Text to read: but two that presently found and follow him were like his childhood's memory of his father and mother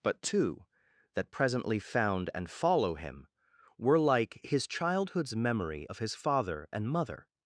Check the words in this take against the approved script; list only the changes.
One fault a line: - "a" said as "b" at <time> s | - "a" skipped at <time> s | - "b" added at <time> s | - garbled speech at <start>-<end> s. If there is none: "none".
none